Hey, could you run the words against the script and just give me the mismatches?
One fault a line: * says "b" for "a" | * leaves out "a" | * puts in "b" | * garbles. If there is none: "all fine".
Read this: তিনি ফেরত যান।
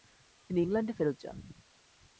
* puts in "ইংল্যান্ডে"